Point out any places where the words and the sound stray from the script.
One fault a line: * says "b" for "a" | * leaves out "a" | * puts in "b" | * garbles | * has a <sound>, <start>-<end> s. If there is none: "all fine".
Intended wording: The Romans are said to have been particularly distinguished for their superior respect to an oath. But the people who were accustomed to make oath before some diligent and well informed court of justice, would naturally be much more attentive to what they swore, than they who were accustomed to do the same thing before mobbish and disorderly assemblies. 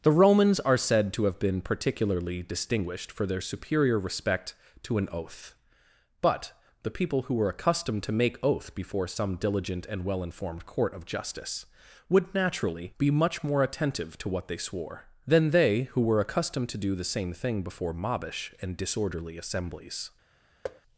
* has a thud, 20.6-20.8 s